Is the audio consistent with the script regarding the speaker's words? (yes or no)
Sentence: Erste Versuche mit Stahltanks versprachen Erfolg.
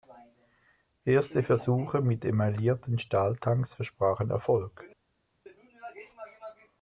no